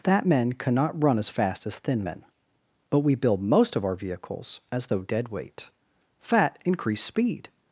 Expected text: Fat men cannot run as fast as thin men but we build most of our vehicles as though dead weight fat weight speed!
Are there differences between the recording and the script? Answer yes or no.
yes